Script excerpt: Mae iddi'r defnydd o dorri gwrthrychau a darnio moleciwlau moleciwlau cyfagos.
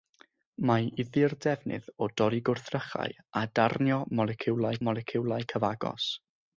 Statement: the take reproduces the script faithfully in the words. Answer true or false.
true